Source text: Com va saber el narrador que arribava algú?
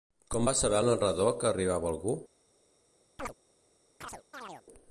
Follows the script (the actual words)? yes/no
yes